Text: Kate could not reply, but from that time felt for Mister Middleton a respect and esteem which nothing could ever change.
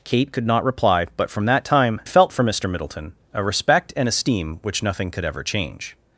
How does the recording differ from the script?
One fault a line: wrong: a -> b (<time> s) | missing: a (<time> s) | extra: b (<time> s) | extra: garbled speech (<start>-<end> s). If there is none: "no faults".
no faults